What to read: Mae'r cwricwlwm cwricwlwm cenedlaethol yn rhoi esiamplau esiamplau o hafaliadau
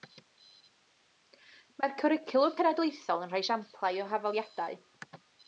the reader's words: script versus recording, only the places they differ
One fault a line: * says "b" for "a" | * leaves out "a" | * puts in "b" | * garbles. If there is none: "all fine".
* leaves out "cwricwlwm"
* leaves out "esiamplau"